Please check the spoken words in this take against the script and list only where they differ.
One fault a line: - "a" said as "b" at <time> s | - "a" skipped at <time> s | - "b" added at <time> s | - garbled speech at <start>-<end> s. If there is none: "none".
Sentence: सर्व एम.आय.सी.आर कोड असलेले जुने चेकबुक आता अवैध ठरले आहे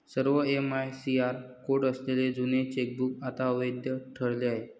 none